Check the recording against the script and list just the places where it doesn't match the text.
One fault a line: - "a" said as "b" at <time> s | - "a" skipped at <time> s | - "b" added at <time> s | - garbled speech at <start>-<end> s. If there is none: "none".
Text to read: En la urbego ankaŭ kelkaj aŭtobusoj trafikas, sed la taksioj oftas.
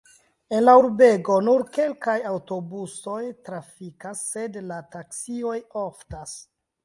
- "ankaŭ" said as "nur" at 1.5 s